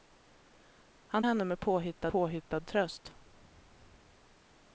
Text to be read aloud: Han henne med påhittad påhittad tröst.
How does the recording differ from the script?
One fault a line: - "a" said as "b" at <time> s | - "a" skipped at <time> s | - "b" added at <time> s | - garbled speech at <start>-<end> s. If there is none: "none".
none